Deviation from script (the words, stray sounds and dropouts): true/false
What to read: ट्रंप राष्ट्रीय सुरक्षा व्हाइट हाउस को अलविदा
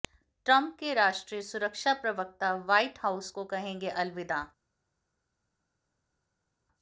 true